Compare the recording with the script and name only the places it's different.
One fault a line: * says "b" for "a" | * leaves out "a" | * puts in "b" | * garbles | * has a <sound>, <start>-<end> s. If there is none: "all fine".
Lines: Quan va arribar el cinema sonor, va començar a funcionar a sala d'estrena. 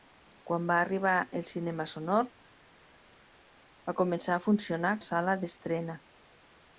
all fine